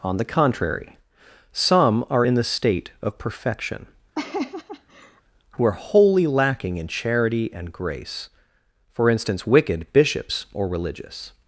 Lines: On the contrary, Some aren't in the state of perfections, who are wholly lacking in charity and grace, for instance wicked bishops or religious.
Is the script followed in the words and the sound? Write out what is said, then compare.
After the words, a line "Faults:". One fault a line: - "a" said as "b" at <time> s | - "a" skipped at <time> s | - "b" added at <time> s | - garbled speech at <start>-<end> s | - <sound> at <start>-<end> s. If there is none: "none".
On the contrary, Some are in the state of perfection, who are wholly lacking in charity and grace, for instance wicked bishops or religious.
Faults:
- "aren't" said as "are" at 2.1 s
- "perfections" said as "perfection" at 3.2 s
- laugh at 4.1-5.2 s